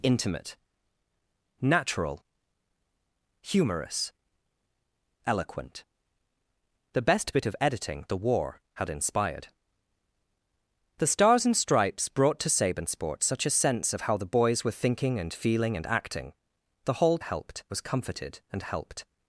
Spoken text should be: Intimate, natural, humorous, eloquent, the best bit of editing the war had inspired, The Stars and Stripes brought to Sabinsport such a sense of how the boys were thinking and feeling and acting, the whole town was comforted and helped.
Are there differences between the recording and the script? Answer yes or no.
yes